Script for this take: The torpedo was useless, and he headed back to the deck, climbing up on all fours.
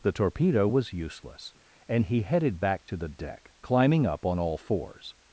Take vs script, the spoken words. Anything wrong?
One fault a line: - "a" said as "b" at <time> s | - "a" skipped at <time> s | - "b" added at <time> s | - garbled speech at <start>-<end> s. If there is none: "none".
none